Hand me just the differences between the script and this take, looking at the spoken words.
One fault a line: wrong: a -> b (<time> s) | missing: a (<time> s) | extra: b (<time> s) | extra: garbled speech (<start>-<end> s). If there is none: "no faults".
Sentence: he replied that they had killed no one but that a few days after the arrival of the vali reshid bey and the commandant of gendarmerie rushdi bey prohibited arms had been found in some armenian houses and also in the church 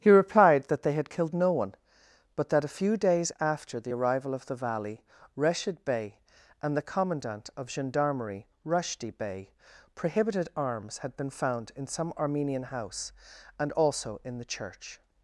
wrong: houses -> house (12.6 s)